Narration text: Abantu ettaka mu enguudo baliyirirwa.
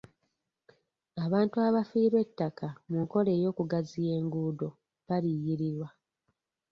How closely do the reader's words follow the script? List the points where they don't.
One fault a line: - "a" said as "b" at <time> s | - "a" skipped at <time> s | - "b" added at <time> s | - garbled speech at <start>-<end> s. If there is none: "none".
- "abafiirwa" added at 1.7 s
- "nkola ey'okugaziya" added at 3.0 s